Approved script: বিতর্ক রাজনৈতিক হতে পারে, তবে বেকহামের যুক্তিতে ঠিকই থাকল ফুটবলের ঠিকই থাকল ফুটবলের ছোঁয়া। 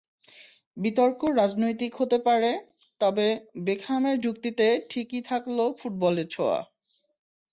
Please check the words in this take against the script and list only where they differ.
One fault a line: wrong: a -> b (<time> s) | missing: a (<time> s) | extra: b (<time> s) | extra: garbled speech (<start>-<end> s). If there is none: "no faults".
missing: ঠিকই থাকল ফুটবলের (6.3 s)